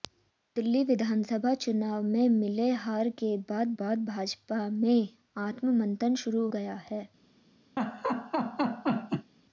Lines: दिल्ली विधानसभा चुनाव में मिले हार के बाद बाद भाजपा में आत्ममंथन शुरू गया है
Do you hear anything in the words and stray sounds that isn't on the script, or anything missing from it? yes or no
yes